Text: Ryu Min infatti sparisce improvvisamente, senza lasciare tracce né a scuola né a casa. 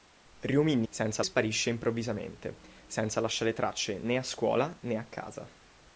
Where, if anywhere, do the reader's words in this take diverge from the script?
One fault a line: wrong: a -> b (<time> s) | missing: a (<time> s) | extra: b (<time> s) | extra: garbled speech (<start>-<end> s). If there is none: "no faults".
wrong: infatti -> senza (0.9 s)